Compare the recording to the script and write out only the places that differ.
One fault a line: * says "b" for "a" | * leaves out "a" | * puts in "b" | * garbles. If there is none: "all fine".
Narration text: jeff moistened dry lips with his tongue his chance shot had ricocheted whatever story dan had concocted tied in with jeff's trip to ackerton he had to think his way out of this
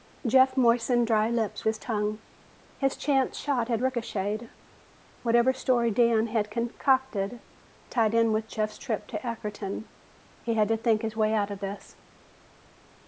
* leaves out "with"